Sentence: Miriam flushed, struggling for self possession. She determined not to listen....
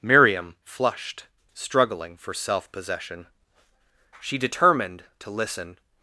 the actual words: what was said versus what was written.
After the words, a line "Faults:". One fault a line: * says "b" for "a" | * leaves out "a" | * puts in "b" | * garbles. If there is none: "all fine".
Miriam flushed, struggling for self possession. She determined to listen....
Faults:
* leaves out "not"